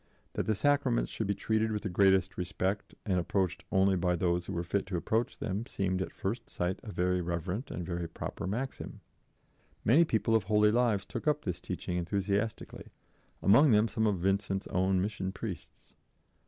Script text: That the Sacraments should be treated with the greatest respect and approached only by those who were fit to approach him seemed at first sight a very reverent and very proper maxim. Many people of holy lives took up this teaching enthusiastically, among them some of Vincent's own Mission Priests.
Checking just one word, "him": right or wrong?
wrong